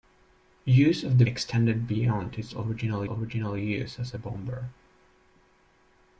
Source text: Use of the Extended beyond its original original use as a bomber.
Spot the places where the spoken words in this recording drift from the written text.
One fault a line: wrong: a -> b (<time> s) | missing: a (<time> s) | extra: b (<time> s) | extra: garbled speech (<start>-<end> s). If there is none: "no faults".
no faults